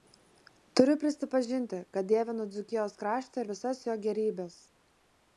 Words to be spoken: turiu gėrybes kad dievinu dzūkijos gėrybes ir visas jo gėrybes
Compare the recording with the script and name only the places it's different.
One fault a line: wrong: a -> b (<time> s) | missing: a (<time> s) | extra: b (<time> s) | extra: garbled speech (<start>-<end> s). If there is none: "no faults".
wrong: gėrybes -> prisipažinti (1.0 s)
wrong: gėrybes -> kraštą (3.0 s)